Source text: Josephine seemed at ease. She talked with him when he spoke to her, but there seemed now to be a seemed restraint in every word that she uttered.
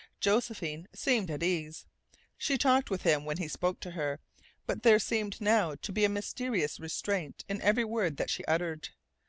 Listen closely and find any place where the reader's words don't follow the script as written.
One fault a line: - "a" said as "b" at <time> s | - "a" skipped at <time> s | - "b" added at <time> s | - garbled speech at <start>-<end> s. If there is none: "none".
- "seemed" said as "mysterious" at 6.1 s